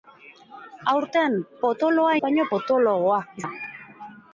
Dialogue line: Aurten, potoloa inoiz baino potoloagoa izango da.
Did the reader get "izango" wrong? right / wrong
wrong